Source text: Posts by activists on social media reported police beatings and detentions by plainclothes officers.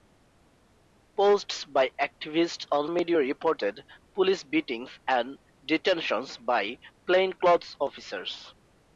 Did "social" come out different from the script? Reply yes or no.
yes